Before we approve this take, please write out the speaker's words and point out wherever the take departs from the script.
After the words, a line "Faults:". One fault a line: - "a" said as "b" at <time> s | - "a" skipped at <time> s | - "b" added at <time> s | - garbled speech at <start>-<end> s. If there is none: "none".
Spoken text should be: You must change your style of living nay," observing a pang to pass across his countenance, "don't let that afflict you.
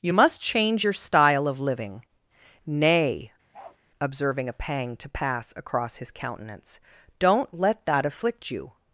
You must change your style of living nay," observing a pang to pass across his countenance, "don't let that afflict you.
Faults:
none